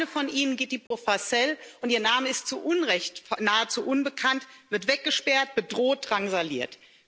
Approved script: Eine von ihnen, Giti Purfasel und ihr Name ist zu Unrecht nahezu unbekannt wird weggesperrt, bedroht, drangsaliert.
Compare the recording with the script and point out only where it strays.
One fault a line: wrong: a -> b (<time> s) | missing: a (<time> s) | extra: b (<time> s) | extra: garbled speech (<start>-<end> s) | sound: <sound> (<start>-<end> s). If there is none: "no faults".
sound: dropout (0.9-0.9 s)